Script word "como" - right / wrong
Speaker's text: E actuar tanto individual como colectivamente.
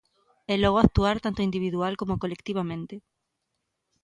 right